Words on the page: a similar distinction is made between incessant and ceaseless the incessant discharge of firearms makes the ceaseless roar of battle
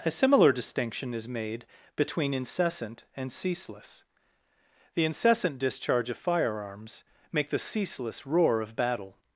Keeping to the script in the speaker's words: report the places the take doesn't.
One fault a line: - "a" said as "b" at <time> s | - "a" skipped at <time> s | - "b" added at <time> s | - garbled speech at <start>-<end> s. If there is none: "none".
- "makes" said as "make" at 7.3 s